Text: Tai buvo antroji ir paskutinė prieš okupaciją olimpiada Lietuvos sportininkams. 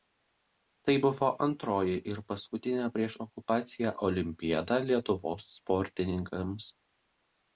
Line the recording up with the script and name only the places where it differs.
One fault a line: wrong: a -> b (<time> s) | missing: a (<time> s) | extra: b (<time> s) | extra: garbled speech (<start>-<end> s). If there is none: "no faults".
no faults